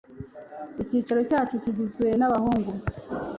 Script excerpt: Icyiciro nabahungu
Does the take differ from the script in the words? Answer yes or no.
yes